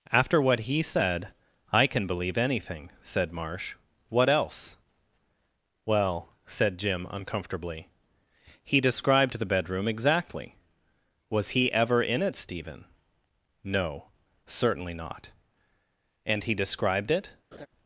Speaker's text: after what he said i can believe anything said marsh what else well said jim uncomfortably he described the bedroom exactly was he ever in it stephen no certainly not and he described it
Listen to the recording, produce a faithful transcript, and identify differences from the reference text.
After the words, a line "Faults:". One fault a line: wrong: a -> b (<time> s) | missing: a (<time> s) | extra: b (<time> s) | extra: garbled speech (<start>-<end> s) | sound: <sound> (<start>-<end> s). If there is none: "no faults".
after what he said i can believe anything said marsh what else well said jim uncomfortably he described the bedroom exactly was he ever in it stephen no certainly not and he described it
Faults:
sound: laugh (17.5-17.7 s)